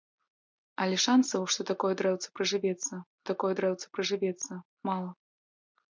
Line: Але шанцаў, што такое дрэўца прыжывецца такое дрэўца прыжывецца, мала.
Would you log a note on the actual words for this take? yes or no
no